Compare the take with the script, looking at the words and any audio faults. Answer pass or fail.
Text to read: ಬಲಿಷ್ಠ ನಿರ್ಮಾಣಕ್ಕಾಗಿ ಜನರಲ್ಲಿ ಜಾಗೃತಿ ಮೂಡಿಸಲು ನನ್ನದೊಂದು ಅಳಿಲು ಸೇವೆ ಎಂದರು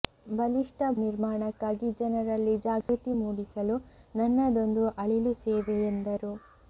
fail